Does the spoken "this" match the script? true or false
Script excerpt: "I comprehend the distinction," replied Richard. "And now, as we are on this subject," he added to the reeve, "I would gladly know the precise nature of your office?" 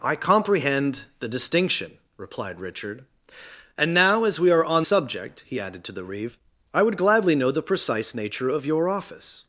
false